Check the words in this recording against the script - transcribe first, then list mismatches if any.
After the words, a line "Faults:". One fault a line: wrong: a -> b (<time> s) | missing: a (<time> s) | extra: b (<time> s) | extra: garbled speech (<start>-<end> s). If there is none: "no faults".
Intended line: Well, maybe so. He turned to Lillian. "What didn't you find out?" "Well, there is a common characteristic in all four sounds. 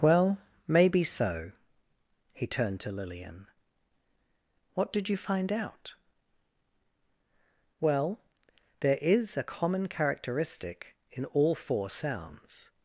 Well, maybe so. He turned to Lillian. "What did you find out?" "Well, there is a common characteristic in all four sounds.
Faults:
wrong: didn't -> did (4.9 s)